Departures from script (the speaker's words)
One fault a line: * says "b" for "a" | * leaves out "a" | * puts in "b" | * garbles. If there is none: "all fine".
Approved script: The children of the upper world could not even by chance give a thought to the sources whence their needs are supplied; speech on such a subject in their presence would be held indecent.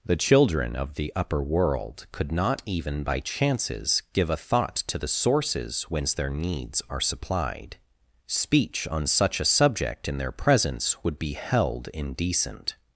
* says "chances" for "chance"